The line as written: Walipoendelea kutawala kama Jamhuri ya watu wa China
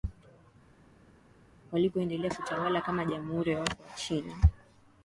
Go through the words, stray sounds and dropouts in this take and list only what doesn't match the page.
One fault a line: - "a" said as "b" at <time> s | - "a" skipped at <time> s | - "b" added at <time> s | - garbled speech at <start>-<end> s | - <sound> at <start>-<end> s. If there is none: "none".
none